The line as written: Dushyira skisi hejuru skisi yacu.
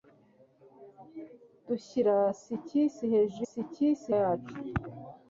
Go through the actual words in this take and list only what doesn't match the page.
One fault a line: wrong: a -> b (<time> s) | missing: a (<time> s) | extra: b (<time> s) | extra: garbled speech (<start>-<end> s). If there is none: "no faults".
no faults